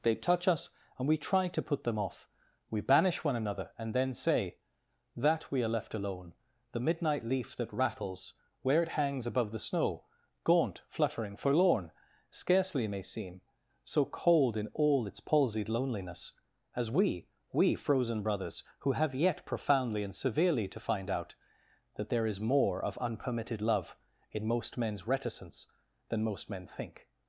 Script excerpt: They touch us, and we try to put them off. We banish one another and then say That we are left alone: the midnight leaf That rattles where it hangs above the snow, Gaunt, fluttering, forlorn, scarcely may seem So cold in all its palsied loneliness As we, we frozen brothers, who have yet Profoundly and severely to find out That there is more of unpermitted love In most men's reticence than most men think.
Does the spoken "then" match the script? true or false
true